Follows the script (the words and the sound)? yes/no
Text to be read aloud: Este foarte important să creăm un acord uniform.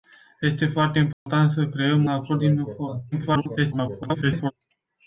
no